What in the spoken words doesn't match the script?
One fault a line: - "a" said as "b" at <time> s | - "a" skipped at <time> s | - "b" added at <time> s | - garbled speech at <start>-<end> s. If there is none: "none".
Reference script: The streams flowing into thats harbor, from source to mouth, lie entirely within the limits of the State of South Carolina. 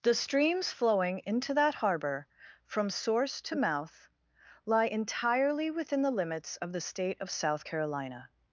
- "thats" said as "that" at 1.5 s